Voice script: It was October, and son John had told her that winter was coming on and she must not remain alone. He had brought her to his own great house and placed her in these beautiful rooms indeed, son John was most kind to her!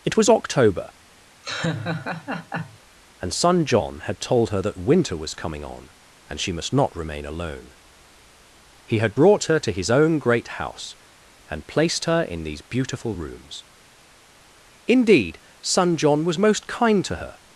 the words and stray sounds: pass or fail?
fail